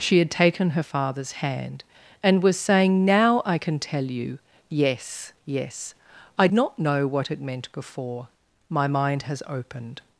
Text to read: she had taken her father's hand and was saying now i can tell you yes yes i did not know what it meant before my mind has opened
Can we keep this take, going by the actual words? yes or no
no